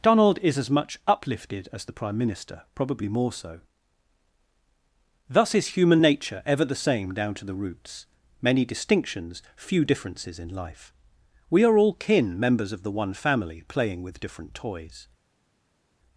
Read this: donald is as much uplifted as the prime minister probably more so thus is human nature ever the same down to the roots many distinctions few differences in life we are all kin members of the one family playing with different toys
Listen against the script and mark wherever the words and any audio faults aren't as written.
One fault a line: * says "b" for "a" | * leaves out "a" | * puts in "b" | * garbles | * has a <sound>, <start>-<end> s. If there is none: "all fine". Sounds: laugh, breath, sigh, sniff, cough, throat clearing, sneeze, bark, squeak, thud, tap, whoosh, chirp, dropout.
all fine